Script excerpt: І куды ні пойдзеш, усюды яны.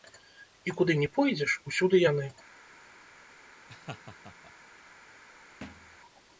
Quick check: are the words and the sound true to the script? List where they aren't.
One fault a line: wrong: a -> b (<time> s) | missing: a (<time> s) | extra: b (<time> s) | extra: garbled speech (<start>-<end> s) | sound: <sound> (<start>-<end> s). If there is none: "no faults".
sound: laugh (3.7-4.5 s)
sound: thud (5.6-6.0 s)